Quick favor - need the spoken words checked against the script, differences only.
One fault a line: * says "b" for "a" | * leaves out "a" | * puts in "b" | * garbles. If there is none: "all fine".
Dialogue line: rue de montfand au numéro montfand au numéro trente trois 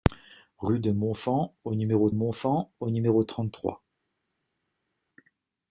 all fine